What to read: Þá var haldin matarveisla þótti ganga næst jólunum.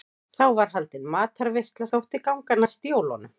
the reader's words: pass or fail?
pass